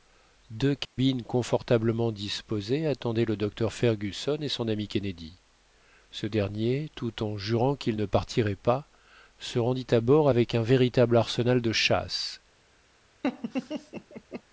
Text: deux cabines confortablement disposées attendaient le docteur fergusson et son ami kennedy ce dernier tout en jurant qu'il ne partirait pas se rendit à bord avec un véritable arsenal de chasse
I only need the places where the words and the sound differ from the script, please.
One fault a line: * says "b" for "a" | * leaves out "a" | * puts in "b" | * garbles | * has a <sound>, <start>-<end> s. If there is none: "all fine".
* has a dropout, 0.8-1.0 s
* has a laugh, 13.2-14.4 s